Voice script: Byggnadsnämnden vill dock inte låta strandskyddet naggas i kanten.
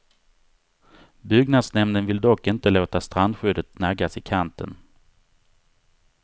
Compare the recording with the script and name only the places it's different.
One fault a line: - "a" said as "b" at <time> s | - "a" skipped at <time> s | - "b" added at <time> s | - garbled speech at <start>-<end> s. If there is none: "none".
none